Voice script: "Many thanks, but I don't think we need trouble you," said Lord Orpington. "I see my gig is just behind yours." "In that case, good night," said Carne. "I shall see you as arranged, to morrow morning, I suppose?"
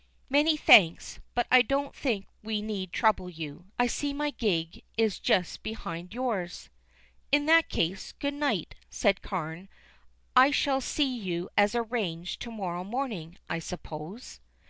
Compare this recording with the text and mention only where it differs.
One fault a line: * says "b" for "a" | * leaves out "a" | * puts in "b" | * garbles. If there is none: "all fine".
* leaves out "said Lord Orpington"